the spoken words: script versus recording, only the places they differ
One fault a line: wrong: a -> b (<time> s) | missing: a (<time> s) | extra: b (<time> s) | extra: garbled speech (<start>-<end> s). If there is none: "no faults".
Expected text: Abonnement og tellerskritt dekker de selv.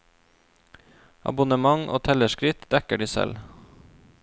no faults